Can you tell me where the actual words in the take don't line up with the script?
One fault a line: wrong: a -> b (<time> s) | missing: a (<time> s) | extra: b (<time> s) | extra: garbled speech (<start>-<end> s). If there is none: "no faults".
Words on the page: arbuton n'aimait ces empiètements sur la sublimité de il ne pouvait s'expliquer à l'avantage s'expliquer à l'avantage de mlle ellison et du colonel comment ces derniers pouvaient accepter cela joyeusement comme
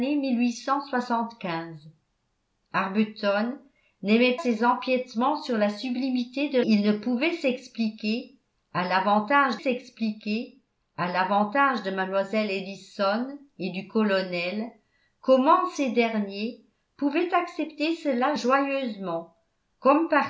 no faults